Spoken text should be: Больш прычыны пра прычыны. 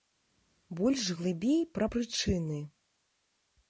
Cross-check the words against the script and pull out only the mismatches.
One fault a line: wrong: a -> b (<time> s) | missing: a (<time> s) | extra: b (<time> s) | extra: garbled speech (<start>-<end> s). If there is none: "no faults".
wrong: прычыны -> глыбей (1.2 s)